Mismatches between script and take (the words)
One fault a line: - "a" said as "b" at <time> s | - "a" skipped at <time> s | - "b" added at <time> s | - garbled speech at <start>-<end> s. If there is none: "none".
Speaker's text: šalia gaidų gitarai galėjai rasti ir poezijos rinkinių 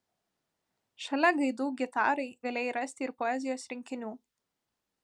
none